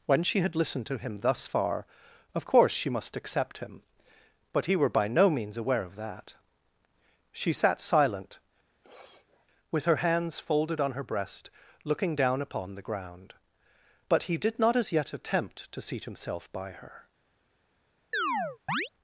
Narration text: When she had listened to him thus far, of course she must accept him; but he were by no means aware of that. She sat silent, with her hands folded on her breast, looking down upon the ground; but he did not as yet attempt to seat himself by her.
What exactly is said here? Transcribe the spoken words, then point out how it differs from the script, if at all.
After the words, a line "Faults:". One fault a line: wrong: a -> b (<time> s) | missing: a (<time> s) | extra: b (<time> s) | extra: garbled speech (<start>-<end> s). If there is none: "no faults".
When she had listened to him thus far, of course she must accept him; but he were by no means aware of that. She sat silent, with her hands folded on her breast, looking down upon the ground; but he did not as yet attempt to seat himself by her.
Faults:
no faults